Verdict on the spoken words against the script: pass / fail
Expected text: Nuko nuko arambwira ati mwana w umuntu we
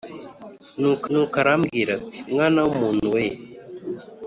pass